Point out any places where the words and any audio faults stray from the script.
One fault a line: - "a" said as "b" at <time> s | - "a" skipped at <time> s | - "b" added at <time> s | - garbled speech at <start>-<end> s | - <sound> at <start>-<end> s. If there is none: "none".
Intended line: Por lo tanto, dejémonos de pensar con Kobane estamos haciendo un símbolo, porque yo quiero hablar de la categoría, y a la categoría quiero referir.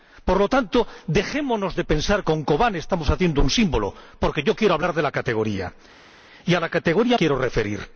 none